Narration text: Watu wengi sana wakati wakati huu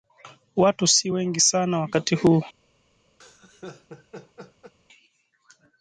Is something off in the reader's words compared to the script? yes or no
yes